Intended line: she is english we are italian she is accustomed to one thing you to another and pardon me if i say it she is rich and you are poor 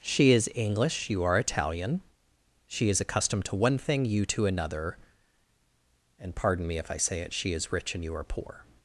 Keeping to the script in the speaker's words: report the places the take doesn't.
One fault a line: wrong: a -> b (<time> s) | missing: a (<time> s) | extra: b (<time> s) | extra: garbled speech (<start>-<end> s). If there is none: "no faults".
wrong: we -> you (1.1 s)